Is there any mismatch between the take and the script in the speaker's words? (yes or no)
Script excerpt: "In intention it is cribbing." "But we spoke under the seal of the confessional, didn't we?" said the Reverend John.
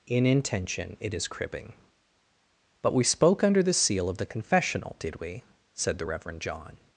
yes